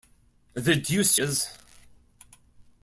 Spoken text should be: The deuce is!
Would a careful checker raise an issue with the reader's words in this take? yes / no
no